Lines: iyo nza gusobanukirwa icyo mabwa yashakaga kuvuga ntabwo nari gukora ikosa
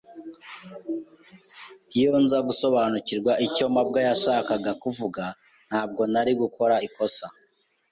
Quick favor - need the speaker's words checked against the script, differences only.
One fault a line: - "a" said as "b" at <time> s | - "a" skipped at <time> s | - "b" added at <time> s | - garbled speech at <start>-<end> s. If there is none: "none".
none